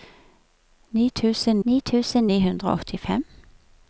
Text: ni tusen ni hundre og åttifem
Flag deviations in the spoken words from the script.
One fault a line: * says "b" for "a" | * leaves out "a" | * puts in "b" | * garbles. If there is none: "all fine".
* puts in "tusen ni"